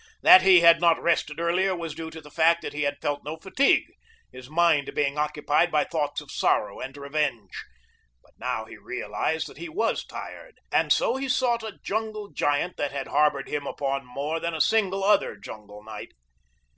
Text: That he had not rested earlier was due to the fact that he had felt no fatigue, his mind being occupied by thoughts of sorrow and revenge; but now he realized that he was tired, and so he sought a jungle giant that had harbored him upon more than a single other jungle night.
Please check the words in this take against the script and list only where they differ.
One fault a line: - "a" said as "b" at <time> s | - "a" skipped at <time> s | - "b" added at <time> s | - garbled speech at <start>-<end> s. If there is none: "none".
none